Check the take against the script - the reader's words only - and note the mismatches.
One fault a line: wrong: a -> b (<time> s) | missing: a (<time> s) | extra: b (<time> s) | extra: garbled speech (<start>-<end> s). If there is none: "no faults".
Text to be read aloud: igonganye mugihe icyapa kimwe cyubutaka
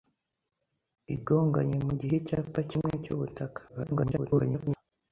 extra: garbled speech (3.7-4.8 s)